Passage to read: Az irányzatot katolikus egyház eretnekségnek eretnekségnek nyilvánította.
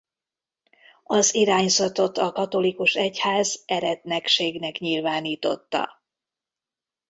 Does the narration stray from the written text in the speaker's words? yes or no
yes